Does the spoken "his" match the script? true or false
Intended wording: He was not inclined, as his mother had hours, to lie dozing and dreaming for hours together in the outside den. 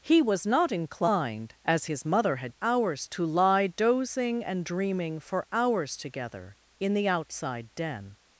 true